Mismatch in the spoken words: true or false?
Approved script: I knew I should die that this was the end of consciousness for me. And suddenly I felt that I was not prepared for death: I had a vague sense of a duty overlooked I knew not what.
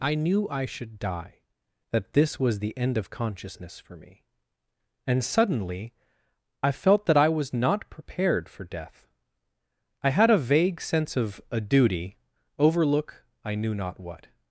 true